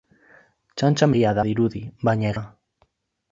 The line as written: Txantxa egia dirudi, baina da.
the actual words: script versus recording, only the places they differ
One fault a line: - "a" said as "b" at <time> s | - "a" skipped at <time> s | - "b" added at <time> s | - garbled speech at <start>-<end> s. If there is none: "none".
none